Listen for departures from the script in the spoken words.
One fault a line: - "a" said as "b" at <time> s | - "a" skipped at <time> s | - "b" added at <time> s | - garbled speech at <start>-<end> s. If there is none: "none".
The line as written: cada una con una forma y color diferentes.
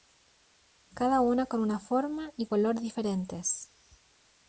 none